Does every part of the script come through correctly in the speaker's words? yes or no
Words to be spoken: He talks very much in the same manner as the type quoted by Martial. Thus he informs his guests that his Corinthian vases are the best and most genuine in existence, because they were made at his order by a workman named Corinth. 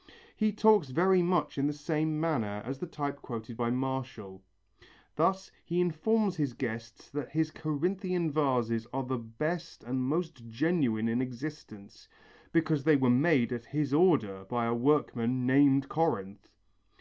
yes